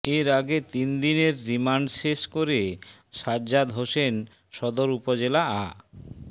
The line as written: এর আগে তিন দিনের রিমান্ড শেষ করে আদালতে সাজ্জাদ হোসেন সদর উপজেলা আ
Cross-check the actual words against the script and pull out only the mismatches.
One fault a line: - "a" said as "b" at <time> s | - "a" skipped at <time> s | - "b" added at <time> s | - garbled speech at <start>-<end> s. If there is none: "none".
- "আদালতে" skipped at 2.6 s